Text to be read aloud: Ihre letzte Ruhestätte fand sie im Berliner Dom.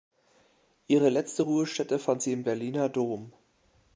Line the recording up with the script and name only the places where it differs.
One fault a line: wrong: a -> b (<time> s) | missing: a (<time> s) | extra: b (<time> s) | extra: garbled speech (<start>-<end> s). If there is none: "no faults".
no faults